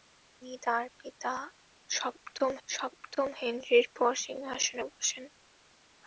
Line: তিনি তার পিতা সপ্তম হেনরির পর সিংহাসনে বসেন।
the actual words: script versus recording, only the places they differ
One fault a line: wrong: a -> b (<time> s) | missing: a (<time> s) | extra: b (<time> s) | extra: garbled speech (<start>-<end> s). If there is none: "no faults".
extra: সপ্তম (2.7 s)